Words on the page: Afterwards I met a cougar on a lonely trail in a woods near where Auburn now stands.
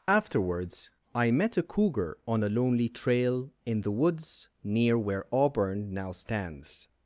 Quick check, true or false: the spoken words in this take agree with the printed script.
false